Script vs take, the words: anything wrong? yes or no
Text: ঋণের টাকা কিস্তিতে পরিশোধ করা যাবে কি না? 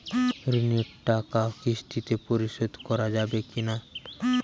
no